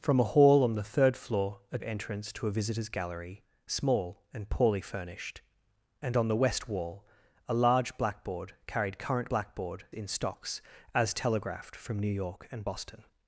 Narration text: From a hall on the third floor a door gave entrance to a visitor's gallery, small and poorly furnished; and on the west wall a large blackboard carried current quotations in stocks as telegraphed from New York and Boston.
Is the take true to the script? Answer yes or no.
no